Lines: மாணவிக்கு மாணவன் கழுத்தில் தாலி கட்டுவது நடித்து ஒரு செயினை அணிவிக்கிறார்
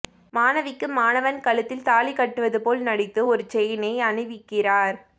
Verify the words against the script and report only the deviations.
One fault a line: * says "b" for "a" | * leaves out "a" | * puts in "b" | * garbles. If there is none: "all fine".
* puts in "போல்"